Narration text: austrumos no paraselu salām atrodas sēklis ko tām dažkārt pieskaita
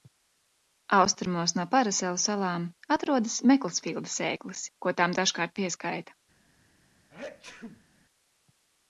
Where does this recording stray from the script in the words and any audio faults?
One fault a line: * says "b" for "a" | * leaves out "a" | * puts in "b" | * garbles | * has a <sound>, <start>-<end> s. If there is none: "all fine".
* puts in "meklsfīlda"
* has a sneeze, 7.1-7.9 s